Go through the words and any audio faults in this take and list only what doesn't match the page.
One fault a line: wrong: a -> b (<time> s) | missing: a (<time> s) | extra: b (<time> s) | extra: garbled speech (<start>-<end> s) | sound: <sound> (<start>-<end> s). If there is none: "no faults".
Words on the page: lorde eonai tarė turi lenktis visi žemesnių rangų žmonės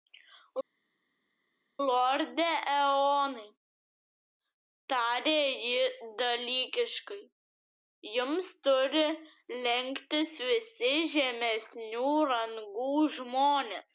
extra: ji dalykiškai jums (5.6 s)